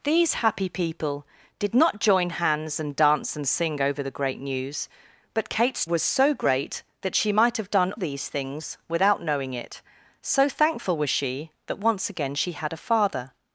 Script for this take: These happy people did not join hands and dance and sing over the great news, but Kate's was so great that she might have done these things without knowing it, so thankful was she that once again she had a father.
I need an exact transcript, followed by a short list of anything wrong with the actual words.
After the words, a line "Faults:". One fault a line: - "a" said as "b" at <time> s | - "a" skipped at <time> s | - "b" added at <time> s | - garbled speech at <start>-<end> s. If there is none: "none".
These happy people did not join hands and dance and sing over the great news, but Kate's was so great that she might have done these things without knowing it, so thankful was she that once again she had a father.
Faults:
none